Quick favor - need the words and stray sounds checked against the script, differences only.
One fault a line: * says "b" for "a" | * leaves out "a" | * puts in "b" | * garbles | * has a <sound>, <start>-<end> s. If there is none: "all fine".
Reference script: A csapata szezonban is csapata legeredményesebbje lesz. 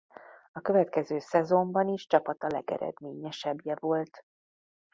* says "következő" for "csapata"
* says "volt" for "lesz"